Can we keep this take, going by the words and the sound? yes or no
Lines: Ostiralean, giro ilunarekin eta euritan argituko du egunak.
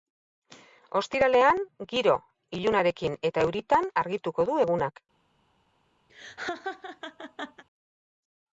no